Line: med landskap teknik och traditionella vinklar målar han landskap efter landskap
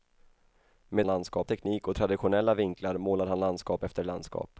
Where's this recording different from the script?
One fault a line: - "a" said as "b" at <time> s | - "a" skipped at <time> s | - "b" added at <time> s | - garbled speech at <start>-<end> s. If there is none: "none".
none